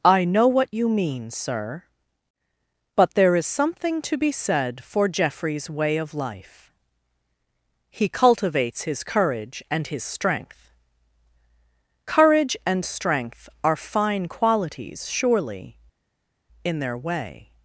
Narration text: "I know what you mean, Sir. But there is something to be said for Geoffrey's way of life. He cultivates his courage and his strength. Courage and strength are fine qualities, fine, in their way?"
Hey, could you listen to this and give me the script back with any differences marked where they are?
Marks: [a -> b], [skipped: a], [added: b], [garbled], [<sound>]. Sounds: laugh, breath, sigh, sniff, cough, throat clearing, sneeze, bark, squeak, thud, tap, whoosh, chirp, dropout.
"I know what you mean, Sir. But there is something to be said for Geoffrey's way of life. He cultivates his courage and his strength. Courage and strength are fine qualities, [fine, -> surely] in their way?"